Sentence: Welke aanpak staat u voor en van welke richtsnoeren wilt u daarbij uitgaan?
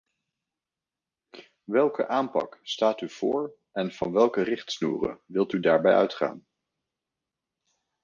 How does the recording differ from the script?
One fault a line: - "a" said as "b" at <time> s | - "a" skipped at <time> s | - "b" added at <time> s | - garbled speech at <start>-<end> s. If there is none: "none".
none